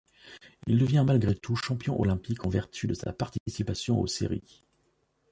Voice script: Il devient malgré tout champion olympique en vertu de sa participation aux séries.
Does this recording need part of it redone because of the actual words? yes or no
no